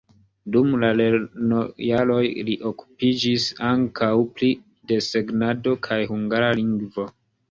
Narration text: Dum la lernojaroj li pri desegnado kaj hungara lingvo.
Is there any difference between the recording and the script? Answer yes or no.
yes